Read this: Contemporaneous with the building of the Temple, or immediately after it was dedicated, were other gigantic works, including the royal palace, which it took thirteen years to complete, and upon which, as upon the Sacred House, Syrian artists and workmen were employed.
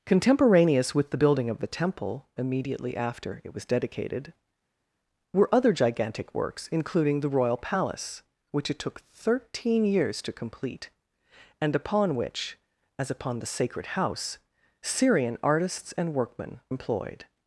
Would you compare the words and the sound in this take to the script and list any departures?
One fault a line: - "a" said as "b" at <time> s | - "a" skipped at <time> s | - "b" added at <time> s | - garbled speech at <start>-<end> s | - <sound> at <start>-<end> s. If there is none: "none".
- "or" skipped at 2.3 s
- "were" skipped at 16.6 s